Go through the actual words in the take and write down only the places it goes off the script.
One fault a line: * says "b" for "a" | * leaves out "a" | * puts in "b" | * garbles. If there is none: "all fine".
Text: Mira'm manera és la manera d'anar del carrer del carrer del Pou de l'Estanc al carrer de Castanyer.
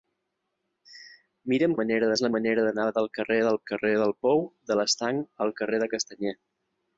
all fine